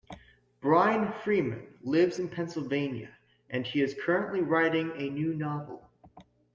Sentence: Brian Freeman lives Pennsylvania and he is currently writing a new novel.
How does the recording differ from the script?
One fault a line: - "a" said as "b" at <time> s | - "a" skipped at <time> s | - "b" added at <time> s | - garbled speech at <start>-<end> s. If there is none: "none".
- "in" added at 2.2 s